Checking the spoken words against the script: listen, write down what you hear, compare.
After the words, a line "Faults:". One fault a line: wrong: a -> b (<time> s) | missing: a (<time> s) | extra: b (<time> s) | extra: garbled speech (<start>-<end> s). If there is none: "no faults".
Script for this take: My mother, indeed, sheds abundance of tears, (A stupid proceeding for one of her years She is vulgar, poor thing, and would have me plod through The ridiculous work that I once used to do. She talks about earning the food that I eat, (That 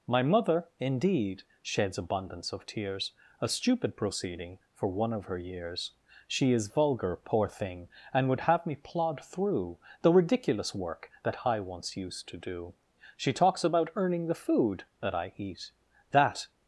My mother, indeed, sheds abundance of tears, (A stupid proceeding for one of her years She is vulgar, poor thing, and would have me plod through The ridiculous work that I once used to do. She talks about earning the food that I eat, (That
Faults:
no faults